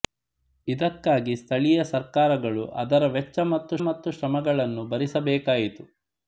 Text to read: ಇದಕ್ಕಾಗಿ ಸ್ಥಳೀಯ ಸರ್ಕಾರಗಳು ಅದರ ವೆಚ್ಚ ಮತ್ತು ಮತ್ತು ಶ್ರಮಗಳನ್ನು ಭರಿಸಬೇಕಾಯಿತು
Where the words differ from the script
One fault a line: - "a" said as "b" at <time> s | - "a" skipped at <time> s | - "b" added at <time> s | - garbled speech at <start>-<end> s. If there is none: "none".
none